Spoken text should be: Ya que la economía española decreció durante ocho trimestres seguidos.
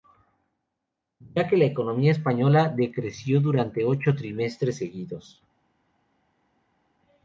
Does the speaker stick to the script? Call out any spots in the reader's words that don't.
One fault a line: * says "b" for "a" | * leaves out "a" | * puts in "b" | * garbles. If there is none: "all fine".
all fine